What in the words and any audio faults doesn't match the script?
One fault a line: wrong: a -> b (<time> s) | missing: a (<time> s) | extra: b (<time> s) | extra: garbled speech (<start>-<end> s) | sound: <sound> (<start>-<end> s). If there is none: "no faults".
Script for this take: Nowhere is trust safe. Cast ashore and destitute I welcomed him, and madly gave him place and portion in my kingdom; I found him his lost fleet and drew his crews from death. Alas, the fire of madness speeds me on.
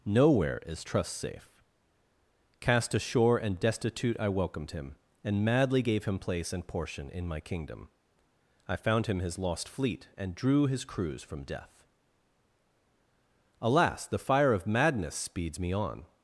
no faults